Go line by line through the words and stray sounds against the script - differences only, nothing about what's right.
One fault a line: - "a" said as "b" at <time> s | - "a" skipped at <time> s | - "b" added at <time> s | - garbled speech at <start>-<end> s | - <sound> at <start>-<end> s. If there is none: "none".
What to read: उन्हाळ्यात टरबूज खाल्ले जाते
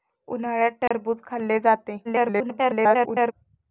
- dropout at 0.9-0.9 s
- garbled speech at 2.0-3.3 s